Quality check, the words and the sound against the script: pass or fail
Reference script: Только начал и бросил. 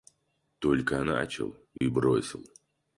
fail